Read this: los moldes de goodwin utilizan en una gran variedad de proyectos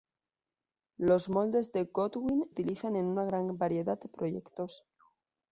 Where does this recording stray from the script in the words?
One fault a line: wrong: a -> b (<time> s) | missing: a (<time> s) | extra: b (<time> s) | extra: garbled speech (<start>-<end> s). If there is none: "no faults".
no faults